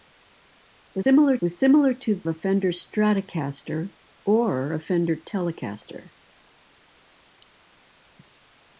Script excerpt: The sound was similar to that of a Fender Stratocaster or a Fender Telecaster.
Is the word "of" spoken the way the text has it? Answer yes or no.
no